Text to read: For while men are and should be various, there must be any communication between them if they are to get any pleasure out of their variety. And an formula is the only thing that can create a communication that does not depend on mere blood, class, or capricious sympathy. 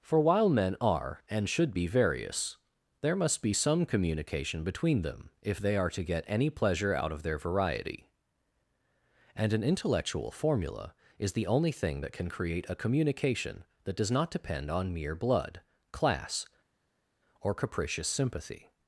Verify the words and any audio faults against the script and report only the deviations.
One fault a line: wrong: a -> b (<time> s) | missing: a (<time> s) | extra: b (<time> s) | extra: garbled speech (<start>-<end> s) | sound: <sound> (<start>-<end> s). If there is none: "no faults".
wrong: any -> some (3.5 s)
extra: intellectual (9.6 s)